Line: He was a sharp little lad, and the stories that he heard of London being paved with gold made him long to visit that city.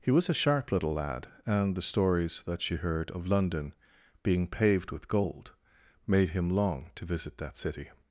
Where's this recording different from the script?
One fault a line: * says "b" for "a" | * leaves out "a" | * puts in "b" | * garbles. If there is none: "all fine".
* says "she" for "he"